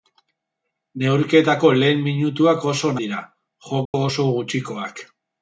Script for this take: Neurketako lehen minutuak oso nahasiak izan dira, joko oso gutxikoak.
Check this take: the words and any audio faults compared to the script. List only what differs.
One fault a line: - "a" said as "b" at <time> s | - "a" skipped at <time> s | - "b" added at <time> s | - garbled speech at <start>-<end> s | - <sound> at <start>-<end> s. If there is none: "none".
- "nahasiak izan" skipped at 2.9 s
- dropout at 3.9-3.9 s